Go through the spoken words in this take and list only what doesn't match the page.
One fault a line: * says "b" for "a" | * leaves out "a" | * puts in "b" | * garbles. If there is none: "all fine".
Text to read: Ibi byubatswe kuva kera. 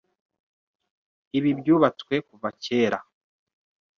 all fine